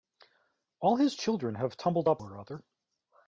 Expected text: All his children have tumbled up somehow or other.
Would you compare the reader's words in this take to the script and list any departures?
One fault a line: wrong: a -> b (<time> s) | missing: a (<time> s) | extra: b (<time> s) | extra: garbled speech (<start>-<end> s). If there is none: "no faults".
missing: somehow (2.2 s)